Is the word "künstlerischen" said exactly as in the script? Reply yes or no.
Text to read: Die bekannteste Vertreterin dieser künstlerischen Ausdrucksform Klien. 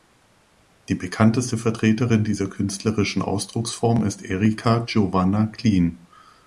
yes